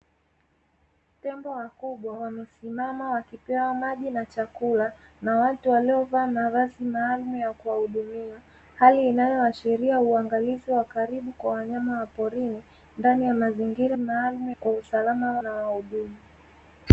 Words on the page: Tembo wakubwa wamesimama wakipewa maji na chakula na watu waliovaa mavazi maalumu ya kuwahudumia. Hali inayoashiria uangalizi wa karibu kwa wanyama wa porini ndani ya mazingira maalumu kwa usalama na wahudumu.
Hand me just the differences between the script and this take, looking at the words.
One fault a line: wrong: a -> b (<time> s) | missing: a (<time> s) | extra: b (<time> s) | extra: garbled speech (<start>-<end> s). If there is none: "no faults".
no faults